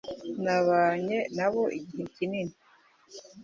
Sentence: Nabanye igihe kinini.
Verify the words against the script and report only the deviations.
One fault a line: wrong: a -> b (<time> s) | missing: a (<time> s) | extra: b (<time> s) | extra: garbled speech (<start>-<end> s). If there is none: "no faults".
extra: nabo (1.4 s)